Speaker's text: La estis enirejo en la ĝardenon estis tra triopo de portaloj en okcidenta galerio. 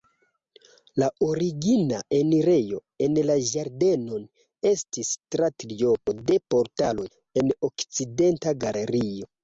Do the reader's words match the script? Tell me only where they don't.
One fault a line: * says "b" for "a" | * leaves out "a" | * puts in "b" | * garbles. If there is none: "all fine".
* says "origina" for "estis"